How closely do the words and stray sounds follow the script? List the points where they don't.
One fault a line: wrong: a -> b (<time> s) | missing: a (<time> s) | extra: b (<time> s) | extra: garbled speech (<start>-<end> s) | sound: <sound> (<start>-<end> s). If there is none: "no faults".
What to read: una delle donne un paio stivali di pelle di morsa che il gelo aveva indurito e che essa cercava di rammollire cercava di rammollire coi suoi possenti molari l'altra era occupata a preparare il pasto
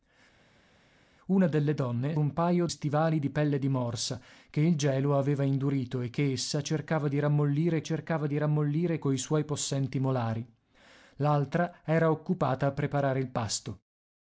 no faults